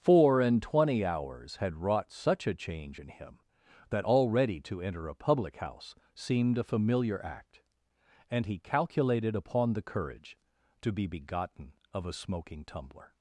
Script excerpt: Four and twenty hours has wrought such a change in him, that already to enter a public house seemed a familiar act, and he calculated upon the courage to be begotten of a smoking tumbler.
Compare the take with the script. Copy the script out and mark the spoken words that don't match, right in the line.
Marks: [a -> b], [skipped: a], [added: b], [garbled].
Four and twenty hours [has -> had] wrought such a change in him, that already to enter a public house seemed a familiar act, and he calculated upon the courage to be begotten of a smoking tumbler.